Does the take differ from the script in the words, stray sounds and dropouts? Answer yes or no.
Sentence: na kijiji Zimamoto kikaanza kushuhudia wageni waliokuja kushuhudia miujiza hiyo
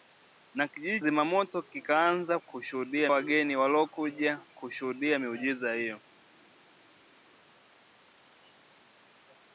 no